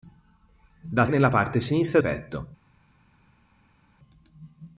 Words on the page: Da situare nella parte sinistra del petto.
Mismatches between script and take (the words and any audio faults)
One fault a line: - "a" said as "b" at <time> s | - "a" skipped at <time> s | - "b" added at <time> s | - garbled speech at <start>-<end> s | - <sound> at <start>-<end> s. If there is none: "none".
- "situare" skipped at 1.1 s
- "del" skipped at 2.0 s